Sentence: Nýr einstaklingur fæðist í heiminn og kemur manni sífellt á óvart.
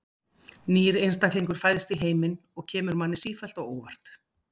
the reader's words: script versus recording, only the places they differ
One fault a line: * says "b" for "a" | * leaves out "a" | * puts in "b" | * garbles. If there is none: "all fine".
all fine